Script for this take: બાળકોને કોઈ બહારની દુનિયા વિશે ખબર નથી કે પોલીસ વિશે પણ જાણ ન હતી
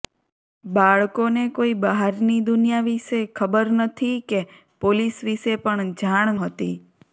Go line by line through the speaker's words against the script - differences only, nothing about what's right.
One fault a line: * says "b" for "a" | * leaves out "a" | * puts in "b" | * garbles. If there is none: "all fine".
* leaves out "ન"